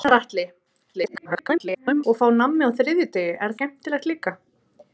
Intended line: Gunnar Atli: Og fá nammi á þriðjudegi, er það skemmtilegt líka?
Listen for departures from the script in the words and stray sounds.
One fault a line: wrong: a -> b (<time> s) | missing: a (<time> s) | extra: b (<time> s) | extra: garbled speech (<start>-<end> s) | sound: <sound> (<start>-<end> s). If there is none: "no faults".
extra: garbled speech (0.9-2.0 s)
missing: það (3.6 s)